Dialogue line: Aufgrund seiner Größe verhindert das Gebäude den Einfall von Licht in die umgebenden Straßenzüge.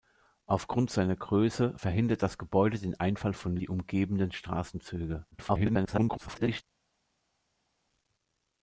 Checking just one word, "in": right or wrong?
wrong